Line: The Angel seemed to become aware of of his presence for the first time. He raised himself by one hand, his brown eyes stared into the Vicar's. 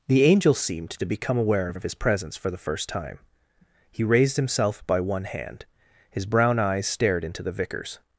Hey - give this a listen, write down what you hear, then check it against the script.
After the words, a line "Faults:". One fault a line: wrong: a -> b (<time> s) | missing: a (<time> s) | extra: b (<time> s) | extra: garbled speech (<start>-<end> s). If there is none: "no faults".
The Angel seemed to become aware of of his presence for the first time. He raised himself by one hand, his brown eyes stared into the Vicar's.
Faults:
no faults